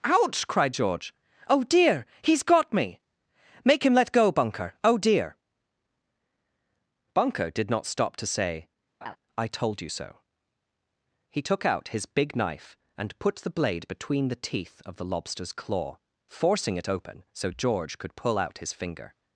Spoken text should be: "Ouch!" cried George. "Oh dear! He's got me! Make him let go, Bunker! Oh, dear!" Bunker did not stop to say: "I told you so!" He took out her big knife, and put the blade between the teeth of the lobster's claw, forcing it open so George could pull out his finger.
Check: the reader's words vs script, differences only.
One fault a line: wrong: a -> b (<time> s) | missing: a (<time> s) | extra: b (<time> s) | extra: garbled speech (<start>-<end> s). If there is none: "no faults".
wrong: her -> his (11.9 s)